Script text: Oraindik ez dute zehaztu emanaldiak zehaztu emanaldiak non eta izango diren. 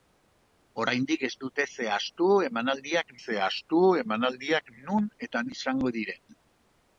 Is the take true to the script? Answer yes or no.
yes